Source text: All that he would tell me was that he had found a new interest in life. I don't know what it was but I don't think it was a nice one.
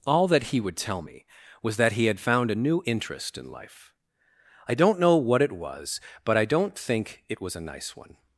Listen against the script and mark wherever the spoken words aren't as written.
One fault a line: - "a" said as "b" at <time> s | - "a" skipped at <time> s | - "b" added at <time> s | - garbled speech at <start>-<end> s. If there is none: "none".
none